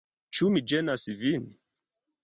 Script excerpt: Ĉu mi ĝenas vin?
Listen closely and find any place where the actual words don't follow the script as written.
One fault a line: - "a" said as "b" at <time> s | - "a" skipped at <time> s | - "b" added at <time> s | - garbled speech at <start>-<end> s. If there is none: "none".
none